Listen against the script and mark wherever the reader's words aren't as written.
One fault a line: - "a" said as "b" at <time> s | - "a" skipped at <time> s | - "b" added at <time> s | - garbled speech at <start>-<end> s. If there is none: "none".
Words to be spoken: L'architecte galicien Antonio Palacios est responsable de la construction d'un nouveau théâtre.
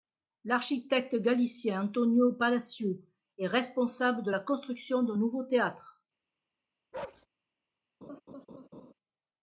none